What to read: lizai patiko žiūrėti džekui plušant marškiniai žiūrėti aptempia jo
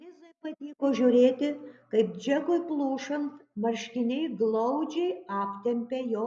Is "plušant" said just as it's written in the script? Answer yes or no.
yes